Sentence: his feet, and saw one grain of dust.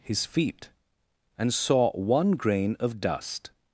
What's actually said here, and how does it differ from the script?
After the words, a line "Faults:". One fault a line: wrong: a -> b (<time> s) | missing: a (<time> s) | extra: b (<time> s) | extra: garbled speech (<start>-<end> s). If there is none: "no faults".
his feet, and saw one grain of dust.
Faults:
no faults